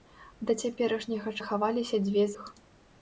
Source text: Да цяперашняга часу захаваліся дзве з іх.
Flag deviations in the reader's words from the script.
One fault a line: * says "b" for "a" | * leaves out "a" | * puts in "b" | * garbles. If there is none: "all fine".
* leaves out "часу"
* leaves out "з"